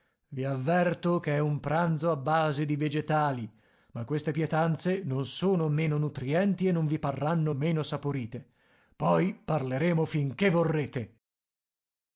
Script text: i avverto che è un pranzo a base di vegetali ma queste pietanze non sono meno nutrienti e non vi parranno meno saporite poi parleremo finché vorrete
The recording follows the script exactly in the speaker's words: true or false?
true